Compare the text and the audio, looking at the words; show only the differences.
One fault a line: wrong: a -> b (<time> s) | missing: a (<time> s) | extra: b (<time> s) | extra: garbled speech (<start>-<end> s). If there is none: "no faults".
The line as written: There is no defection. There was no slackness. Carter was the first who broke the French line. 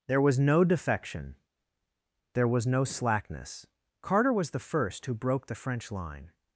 wrong: is -> was (0.2 s)